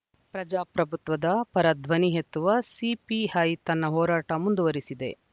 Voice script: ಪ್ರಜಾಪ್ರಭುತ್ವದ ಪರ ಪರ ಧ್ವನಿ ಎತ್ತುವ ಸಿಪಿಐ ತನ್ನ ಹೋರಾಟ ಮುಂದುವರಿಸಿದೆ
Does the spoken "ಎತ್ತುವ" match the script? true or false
true